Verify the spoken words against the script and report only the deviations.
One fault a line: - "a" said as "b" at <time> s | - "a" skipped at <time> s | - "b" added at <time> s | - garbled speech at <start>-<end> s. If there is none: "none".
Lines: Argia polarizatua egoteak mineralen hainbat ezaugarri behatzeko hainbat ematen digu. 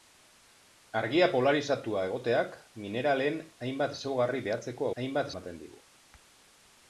none